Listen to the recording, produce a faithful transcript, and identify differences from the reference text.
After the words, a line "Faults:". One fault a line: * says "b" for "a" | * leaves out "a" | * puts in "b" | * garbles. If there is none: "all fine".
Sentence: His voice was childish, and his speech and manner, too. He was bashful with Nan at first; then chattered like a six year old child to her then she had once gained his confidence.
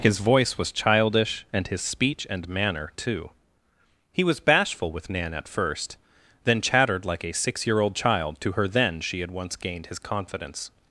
His voice was childish, and his speech and manner, too. He was bashful with Nan at first; then chattered like a six year old child to her then she had once gained his confidence.
Faults:
all fine